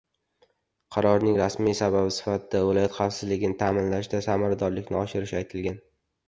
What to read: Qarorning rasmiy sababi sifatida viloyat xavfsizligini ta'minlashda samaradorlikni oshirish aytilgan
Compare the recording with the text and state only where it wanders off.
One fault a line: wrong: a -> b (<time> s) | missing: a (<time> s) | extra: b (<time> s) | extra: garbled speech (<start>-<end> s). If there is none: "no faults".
no faults